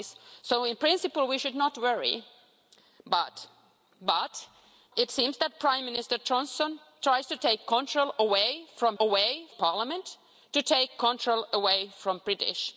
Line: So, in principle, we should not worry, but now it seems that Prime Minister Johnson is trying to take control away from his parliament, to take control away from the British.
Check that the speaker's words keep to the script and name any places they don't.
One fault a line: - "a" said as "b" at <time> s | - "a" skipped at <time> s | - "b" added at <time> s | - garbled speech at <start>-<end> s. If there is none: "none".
- "now" skipped at 3.5 s
- "his" said as "away" at 9.0 s